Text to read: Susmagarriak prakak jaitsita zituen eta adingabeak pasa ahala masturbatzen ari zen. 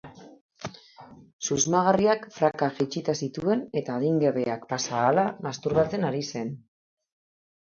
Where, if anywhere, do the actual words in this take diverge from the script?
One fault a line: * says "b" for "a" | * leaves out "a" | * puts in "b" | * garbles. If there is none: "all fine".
all fine